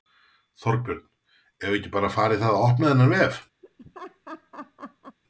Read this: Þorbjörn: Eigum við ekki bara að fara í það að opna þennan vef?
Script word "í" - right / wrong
right